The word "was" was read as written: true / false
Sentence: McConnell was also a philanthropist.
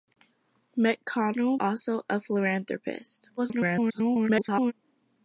false